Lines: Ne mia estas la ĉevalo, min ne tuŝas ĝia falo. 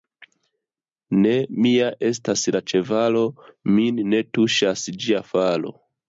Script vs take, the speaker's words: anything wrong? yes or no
no